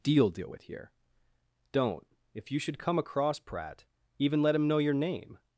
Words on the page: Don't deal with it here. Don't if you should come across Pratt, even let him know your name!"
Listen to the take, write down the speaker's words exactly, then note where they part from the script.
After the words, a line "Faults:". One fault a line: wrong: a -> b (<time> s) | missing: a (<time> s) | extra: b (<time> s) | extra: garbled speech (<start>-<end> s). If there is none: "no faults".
Deal deal with here. Don't if you should come across Pratt, even let him know your name!"
Faults:
wrong: Don't -> Deal (0.0 s)
missing: it (0.6 s)